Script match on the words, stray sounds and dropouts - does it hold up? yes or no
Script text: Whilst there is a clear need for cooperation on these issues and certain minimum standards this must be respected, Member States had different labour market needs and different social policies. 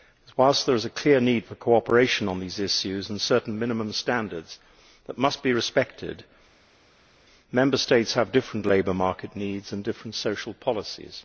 no